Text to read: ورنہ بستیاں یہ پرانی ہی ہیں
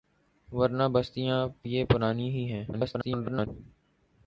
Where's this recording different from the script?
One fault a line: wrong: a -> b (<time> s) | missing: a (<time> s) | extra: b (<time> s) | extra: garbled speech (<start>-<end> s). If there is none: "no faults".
extra: garbled speech (2.7-3.5 s)